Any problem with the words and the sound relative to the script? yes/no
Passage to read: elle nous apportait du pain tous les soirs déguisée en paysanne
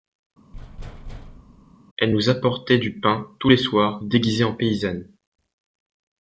yes